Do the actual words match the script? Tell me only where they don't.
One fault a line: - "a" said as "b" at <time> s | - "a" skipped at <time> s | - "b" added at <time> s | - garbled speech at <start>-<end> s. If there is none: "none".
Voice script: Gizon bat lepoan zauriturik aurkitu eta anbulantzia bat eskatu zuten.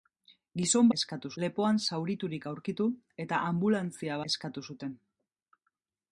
- "bat" said as "eskatu" at 1.0 s
- "bat" skipped at 4.2 s